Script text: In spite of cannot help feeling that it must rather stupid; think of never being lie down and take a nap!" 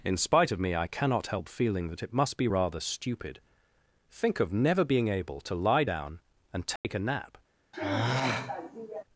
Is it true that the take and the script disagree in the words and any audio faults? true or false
true